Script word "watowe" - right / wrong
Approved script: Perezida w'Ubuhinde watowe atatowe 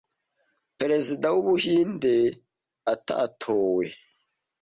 wrong